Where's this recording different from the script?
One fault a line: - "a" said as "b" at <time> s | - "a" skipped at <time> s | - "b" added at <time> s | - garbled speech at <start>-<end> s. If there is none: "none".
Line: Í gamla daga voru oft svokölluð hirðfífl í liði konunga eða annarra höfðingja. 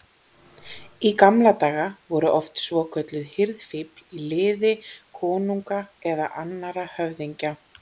none